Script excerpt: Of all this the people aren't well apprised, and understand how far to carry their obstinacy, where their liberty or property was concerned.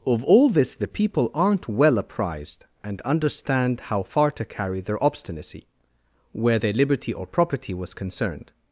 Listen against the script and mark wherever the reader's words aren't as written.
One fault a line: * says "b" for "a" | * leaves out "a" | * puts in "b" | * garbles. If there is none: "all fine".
all fine